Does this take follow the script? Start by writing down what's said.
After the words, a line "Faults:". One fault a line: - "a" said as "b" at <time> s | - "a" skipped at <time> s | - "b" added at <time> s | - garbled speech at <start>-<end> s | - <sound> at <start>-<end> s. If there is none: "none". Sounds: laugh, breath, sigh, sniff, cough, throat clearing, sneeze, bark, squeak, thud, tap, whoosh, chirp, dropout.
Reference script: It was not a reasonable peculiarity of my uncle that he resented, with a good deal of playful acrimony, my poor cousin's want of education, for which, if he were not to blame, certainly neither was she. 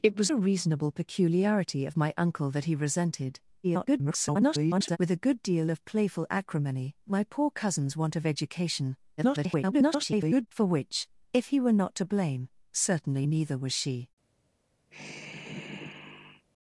It was a reasonable peculiarity of my uncle that he resented, [garbled] with a good deal of playful acrimony, my poor cousin's want of education, [garbled] for which, if he were not to blame, certainly neither was she.
Faults:
- "not" skipped at 0.3 s
- garbled speech at 3.6-5.0 s
- garbled speech at 9.2-10.5 s
- sigh at 14.9-16.5 s